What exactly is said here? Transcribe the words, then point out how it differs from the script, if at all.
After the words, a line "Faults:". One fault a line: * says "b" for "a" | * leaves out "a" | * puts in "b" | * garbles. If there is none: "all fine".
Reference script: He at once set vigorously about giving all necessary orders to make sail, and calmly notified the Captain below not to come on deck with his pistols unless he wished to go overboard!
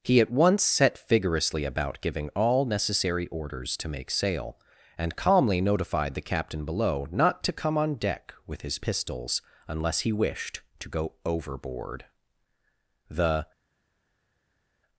He at once set vigorously about giving all necessary orders to make sail, and calmly notified the Captain below not to come on deck with his pistols unless he wished to go overboard! The
Faults:
* puts in "The"